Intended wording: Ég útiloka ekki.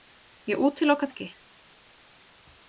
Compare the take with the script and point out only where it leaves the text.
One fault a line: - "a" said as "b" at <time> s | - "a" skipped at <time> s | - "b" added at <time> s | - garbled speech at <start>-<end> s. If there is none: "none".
none